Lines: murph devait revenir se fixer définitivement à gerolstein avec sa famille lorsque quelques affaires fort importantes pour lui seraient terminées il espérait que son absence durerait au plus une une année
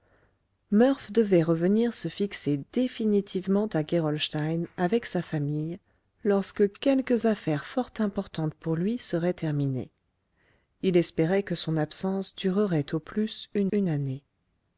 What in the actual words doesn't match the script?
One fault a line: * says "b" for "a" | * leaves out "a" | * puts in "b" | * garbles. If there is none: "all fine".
all fine